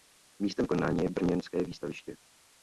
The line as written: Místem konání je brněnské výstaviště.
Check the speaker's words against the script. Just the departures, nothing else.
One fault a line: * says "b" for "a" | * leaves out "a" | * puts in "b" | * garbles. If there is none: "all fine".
all fine